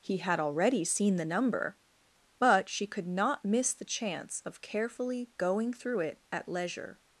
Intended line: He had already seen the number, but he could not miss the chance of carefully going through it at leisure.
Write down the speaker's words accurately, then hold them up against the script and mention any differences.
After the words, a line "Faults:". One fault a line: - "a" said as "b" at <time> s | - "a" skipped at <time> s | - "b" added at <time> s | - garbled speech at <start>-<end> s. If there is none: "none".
He had already seen the number, but she could not miss the chance of carefully going through it at leisure.
Faults:
- "he" said as "she" at 2.7 s